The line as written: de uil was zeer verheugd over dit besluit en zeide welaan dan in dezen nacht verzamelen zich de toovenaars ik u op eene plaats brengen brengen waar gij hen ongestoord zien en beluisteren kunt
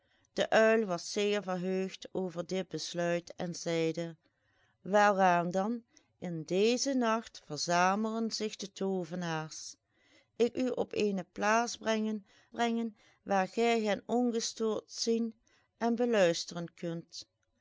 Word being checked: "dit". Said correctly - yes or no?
yes